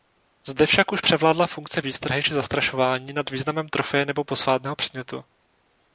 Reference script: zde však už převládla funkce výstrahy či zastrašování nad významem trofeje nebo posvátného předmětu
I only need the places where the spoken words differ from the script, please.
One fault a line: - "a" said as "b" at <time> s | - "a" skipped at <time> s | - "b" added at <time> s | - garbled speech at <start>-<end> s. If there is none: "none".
none